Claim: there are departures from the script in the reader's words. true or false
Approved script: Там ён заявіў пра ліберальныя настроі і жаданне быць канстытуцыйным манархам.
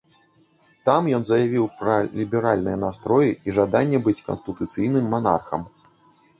false